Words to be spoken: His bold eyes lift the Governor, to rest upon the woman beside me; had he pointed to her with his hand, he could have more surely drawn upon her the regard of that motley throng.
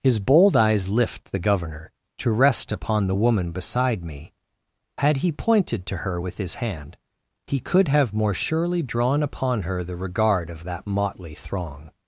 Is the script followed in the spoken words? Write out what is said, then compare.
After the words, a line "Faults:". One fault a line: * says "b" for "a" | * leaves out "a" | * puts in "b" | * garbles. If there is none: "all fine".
His bold eyes lift the Governor, to rest upon the woman beside me; had he pointed to her with his hand, he could have more surely drawn upon her the regard of that motley throng.
Faults:
all fine